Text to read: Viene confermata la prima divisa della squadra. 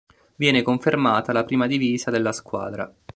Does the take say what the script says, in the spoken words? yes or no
yes